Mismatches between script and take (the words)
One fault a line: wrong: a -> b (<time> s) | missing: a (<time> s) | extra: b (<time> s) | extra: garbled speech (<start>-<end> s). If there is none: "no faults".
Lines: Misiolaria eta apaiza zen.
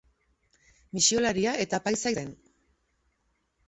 no faults